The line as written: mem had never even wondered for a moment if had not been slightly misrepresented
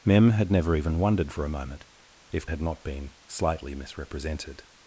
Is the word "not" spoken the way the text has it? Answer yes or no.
yes